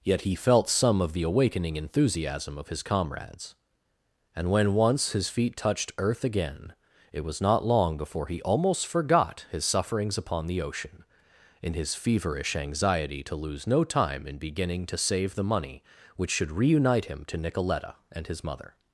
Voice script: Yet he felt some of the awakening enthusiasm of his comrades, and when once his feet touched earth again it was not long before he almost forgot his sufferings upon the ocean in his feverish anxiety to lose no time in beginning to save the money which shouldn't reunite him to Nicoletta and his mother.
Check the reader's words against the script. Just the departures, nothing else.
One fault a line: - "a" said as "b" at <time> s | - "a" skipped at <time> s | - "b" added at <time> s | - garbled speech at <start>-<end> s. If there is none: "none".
- "shouldn't" said as "should" at 16.3 s